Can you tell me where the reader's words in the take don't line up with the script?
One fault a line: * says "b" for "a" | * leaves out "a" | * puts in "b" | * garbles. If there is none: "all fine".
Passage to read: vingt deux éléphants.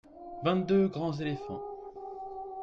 * puts in "grands"